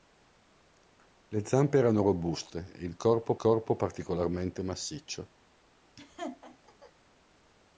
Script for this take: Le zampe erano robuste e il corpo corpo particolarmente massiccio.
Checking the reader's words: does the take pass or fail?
pass